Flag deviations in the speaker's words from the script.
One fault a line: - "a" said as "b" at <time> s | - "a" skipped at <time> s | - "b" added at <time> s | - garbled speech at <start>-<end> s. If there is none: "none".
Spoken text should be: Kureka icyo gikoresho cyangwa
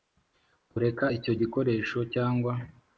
none